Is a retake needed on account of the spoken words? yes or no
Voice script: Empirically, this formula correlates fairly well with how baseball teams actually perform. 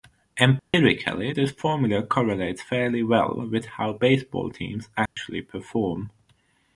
no